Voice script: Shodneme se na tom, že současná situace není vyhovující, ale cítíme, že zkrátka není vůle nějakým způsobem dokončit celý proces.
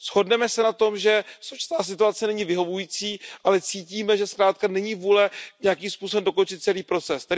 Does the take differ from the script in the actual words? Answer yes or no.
no